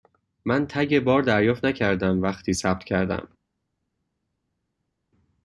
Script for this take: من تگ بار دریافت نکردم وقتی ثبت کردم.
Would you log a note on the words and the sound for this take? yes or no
no